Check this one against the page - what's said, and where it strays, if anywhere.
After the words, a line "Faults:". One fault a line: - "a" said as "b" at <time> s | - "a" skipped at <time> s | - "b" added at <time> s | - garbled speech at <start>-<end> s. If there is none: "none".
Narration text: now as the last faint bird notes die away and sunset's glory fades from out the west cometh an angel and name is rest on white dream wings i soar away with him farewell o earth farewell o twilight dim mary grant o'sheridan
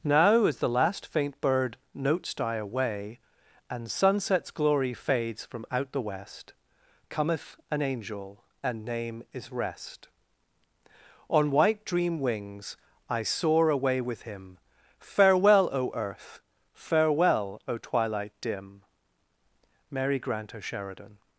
now as the last faint bird notes die away and sunset's glory fades from out the west cometh an angel and name is rest on white dream wings i soar away with him farewell o earth farewell o twilight dim mary grant o'sheridan
Faults:
none